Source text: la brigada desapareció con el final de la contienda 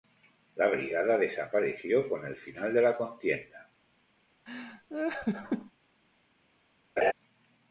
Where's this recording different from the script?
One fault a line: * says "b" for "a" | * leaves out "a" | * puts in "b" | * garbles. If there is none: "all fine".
all fine